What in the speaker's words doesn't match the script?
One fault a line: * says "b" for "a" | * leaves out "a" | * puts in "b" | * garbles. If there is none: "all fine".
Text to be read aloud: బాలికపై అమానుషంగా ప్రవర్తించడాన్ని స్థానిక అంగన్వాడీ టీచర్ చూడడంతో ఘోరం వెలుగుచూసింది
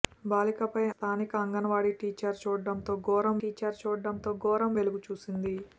* says "స్థానిక అంగన్వాడీ టీచర్ చూడడంతో ఘోరం" for "అమానుషంగా ప్రవర్తించడాన్ని స్థానిక అంగన్వాడీ"